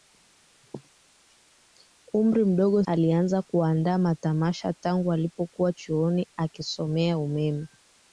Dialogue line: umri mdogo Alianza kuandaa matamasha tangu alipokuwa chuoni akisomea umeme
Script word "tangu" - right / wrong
right